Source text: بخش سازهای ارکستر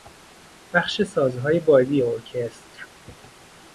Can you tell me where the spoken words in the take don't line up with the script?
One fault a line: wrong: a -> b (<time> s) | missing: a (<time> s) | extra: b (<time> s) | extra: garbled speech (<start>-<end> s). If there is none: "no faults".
extra: بادی (1.6 s)